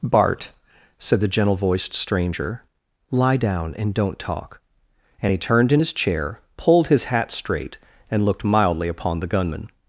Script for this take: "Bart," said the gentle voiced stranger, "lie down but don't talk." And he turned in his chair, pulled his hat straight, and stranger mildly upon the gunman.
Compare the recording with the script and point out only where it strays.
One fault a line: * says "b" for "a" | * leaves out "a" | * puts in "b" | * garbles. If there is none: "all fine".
* says "and" for "but"
* says "looked" for "stranger"